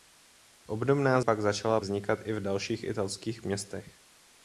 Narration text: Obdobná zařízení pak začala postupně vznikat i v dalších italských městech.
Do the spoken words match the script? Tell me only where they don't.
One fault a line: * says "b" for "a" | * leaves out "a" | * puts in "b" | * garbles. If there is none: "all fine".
* leaves out "zařízení"
* leaves out "postupně"